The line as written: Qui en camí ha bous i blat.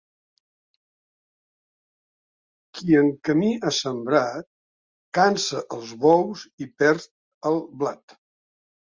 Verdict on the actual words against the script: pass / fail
fail